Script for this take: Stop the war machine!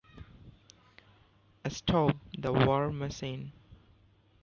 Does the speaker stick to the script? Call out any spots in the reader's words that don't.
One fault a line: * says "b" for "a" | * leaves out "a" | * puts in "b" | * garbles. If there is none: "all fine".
all fine